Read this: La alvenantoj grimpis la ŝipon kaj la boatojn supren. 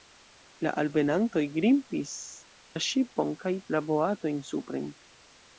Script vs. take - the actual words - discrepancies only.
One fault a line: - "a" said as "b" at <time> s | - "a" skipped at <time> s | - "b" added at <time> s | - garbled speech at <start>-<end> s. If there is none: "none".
none